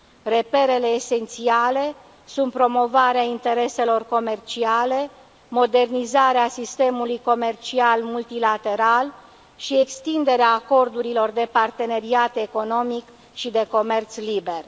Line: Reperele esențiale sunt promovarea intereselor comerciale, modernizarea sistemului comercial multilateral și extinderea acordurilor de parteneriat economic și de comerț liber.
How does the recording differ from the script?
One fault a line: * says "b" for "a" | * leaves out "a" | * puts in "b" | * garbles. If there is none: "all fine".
all fine